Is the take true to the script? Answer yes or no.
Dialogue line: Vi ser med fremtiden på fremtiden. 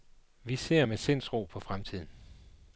no